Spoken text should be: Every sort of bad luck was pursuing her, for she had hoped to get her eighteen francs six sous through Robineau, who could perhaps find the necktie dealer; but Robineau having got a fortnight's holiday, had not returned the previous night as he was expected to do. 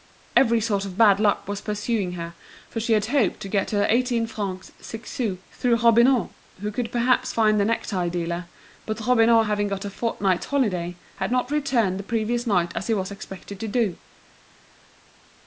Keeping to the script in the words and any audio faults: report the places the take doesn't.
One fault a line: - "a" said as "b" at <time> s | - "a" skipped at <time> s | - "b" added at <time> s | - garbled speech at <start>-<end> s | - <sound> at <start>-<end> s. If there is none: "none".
none